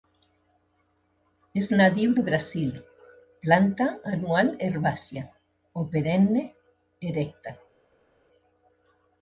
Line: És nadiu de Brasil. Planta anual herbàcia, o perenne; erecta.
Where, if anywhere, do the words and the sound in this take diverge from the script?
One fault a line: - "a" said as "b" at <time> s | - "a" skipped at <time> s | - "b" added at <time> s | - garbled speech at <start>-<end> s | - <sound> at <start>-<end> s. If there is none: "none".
none